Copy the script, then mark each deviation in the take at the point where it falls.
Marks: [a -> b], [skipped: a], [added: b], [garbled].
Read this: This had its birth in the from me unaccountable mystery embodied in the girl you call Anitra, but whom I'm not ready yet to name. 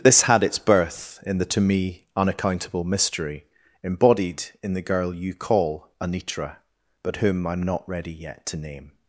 This had its birth in the [from -> to] me unaccountable mystery embodied in the girl you call Anitra, but whom I'm not ready yet to name.